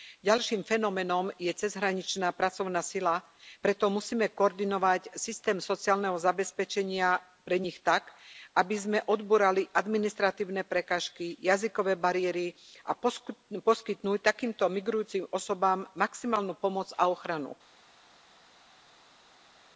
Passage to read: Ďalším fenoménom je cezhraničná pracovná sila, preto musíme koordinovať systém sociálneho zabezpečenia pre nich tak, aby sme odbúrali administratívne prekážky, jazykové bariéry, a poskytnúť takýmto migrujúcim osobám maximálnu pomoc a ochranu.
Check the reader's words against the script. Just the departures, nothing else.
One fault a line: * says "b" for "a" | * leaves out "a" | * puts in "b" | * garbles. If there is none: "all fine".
all fine